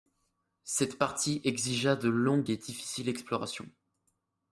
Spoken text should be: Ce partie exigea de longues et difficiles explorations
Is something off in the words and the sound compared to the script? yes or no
yes